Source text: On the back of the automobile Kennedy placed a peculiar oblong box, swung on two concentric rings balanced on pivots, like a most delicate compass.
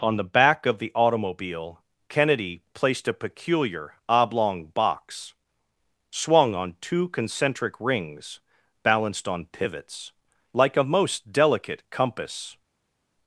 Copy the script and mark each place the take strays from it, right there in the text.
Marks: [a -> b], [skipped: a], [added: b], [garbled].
On the back of the automobile Kennedy placed a peculiar oblong box, swung on two concentric rings balanced on pivots, like a most delicate compass.